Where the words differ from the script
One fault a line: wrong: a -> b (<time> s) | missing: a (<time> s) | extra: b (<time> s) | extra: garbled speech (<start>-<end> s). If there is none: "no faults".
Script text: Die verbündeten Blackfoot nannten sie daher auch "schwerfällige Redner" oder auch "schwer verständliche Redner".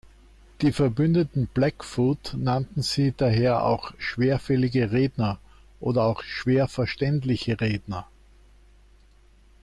no faults